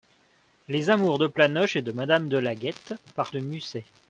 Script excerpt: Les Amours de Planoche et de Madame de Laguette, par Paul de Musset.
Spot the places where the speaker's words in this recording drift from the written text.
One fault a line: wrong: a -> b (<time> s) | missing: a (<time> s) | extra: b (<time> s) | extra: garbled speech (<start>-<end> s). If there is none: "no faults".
missing: Paul (3.3 s)